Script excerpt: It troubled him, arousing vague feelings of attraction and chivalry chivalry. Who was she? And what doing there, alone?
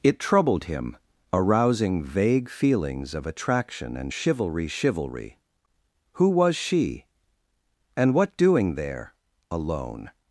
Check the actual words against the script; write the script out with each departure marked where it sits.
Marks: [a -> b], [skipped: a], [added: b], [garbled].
It troubled him, arousing vague feelings of attraction and chivalry chivalry. Who was she? And what doing there, alone?